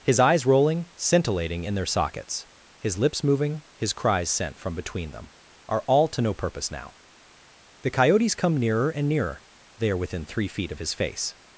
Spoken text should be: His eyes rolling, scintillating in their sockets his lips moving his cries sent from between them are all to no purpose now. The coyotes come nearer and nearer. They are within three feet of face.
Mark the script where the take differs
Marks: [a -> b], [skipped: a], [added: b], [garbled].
His eyes rolling, scintillating in their sockets his lips moving his cries sent from between them are all to no purpose now. The coyotes come nearer and nearer. They are within three feet of [added: his] face.